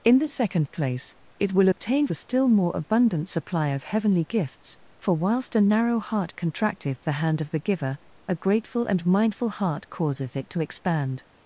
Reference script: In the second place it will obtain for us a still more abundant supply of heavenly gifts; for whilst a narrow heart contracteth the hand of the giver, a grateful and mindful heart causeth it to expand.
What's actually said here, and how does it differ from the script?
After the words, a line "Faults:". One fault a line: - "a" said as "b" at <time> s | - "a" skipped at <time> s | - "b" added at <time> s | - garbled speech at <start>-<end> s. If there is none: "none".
In the second place it will obtain a still more abundant supply of heavenly gifts; for whilst a narrow heart contracteth the hand of the giver, a grateful and mindful heart causeth it to expand.
Faults:
- "for us" skipped at 2.1 s